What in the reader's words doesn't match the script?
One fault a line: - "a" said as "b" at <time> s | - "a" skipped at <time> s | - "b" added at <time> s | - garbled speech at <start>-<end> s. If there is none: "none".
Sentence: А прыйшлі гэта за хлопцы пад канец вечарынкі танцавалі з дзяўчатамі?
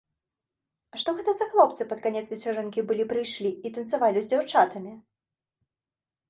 - "прыйшлі" said as "што" at 1.0 s
- "былі прыйшлі і" added at 2.9 s